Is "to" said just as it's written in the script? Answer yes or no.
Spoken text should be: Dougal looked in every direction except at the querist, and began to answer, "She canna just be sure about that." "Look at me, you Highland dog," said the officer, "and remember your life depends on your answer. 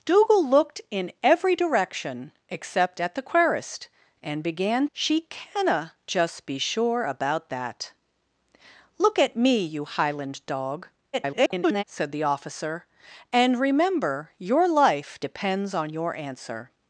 no